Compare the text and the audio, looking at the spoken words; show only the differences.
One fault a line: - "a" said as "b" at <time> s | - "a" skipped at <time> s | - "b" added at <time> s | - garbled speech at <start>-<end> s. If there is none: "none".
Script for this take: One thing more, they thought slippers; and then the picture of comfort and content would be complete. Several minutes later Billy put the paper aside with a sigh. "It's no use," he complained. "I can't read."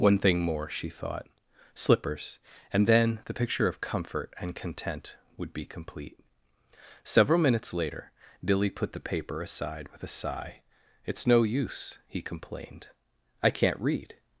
- "they" said as "she" at 0.7 s